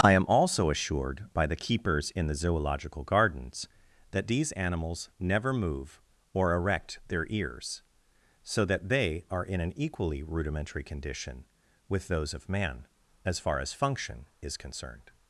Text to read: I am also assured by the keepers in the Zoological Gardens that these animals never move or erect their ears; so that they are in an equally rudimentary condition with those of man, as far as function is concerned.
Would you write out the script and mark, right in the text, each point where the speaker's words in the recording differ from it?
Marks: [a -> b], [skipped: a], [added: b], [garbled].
I am also assured by the keepers in the Zoological Gardens that these animals never move or erect their ears; so that they are in an equally rudimentary condition with those of man, as far as function is concerned.